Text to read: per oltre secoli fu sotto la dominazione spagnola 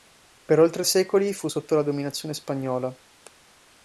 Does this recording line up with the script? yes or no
yes